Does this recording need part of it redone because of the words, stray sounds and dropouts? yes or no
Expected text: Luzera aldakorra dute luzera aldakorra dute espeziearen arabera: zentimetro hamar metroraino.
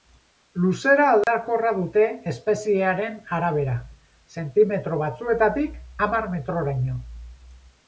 yes